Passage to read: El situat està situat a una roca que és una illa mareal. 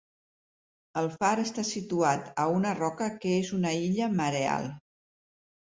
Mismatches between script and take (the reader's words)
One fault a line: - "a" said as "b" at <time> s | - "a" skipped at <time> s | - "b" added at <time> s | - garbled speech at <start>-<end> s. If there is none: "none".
- "situat" said as "far" at 1.1 s